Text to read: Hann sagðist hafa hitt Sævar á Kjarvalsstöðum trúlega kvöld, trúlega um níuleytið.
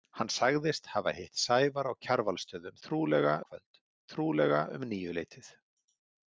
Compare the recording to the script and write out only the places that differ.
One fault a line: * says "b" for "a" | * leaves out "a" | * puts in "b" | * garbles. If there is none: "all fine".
all fine